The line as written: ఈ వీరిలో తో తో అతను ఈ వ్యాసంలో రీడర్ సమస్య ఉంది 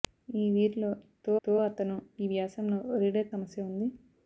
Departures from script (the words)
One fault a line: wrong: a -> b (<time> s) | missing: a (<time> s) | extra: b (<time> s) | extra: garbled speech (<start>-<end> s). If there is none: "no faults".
no faults